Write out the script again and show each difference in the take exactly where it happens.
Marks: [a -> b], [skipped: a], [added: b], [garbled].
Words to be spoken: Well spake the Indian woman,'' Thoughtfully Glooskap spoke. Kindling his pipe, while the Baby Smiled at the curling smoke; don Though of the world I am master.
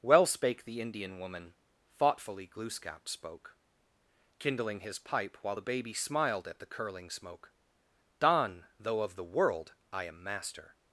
Well spake the Indian woman,'' Thoughtfully Glooskap spoke. Kindling his pipe, while the Baby Smiled at the curling smoke; don Though of the world I am master.